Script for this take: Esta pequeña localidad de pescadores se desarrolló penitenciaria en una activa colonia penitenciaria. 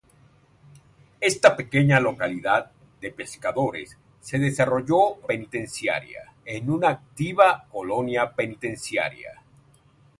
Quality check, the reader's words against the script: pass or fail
pass